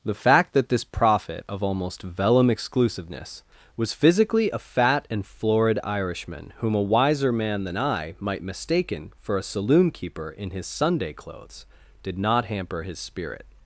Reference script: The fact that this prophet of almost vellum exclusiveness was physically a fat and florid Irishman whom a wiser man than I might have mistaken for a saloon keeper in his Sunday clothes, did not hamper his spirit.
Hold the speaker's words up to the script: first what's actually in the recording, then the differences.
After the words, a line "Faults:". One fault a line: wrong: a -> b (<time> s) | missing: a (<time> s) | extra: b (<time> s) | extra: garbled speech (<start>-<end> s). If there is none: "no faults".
The fact that this prophet of almost vellum exclusiveness was physically a fat and florid Irishman whom a wiser man than I might mistaken for a saloon keeper in his Sunday clothes, did not hamper his spirit.
Faults:
missing: have (8.4 s)